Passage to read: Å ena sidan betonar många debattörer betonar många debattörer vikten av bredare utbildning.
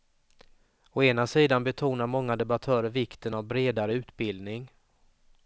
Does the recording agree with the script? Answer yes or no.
no